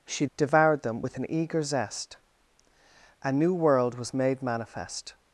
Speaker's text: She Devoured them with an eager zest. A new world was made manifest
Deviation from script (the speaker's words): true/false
false